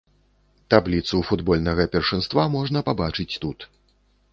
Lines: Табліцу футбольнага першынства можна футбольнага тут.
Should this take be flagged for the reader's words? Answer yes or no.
yes